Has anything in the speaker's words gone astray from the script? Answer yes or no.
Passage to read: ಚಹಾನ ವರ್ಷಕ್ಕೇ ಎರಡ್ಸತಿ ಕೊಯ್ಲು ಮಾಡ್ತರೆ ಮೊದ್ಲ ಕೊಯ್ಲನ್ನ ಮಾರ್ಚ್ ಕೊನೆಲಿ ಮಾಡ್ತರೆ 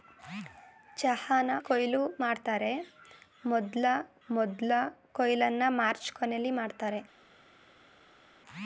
yes